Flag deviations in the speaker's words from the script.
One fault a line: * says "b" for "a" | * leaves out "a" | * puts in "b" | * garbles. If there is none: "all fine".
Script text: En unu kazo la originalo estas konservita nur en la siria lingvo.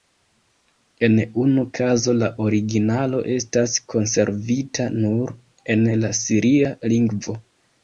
all fine